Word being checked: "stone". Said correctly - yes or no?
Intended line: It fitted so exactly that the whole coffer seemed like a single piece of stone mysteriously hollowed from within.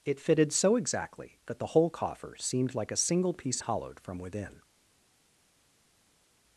no